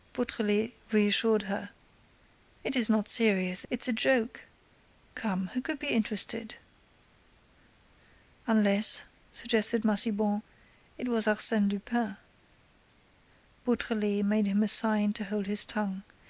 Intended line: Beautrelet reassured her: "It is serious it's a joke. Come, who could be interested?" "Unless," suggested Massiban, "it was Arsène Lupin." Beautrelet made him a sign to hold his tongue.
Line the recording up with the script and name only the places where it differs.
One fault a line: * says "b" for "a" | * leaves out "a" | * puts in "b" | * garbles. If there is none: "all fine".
* puts in "not"